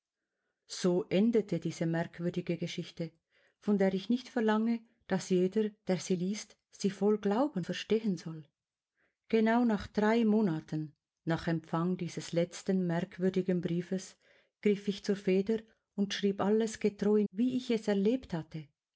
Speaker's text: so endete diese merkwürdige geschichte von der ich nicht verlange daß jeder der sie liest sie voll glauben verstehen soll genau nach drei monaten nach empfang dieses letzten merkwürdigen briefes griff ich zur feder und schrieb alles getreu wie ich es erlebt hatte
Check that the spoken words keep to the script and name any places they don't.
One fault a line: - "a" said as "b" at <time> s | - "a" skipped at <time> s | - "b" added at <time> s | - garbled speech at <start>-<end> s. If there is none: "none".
none